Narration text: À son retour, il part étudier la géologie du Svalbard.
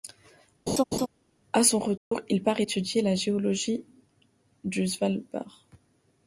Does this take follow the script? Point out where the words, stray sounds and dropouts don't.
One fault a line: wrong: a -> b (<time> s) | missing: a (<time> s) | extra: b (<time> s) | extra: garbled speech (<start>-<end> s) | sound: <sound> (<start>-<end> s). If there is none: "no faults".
sound: laugh (0.7-1.1 s)
sound: dropout (2.0-2.1 s)